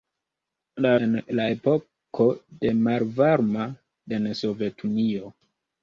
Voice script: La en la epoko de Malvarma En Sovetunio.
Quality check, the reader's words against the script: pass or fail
pass